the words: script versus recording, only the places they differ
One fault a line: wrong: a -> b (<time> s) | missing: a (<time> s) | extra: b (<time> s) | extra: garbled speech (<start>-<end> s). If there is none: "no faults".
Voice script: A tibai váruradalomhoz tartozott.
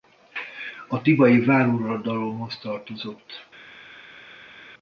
no faults